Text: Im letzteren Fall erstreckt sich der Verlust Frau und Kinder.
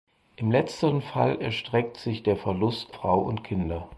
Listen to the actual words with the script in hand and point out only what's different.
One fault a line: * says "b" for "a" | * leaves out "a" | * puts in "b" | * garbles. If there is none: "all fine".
all fine